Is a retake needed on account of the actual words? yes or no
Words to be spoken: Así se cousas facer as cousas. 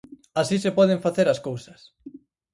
yes